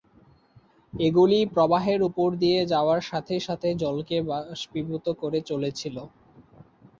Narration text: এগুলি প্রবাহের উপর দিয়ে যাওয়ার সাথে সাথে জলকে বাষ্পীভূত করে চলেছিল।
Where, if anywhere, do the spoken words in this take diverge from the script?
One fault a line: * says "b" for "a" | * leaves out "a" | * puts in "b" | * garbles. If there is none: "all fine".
all fine